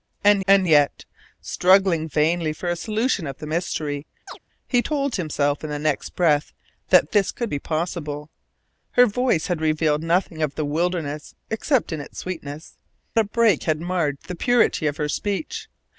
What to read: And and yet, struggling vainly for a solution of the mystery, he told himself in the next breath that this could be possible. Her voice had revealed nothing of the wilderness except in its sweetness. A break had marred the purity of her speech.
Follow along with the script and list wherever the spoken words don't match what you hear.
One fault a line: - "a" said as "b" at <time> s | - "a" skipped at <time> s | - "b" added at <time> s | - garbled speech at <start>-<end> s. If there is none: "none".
none